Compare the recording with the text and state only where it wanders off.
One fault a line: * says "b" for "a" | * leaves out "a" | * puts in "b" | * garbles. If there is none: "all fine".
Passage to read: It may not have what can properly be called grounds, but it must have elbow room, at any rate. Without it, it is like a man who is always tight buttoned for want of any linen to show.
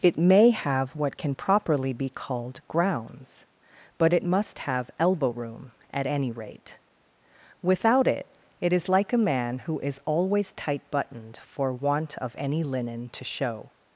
* leaves out "not"